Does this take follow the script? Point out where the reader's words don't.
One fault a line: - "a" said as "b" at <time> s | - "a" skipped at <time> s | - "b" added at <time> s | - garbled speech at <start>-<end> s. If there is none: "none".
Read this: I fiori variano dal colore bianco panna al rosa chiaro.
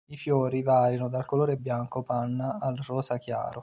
none